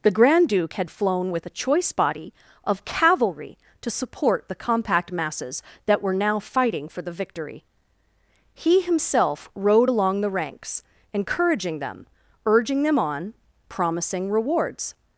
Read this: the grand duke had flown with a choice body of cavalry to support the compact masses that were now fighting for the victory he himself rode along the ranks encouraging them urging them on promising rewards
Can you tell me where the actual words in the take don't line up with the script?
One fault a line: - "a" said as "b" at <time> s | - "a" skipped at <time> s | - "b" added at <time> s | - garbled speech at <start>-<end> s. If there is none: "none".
none